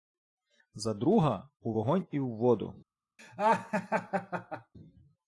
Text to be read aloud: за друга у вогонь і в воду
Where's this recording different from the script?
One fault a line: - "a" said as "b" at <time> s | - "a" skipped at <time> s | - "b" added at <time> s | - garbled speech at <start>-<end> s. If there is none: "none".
none